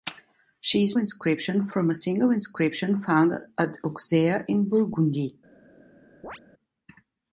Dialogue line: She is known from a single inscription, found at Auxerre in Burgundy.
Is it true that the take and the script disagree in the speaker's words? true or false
true